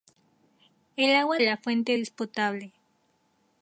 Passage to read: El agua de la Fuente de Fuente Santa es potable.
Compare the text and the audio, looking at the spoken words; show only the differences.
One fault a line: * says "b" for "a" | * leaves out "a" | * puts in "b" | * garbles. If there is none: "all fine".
* leaves out "de"
* leaves out "de Fuente Santa"